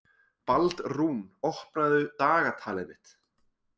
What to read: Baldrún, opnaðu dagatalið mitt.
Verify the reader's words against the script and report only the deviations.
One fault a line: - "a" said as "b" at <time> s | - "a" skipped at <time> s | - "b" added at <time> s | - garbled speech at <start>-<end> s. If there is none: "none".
none